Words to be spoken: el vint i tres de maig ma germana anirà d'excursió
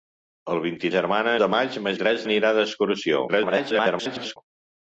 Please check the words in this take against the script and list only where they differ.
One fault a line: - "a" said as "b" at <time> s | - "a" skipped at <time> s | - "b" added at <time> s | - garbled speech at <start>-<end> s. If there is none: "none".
- "tres" said as "germana" at 0.9 s
- "germana" said as "tres" at 2.0 s
- garbled speech at 3.3-4.4 s